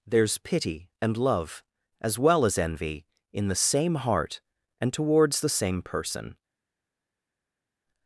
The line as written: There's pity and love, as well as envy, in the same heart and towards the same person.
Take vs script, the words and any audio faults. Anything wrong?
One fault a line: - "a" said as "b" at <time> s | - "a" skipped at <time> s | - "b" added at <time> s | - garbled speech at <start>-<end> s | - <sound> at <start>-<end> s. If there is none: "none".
none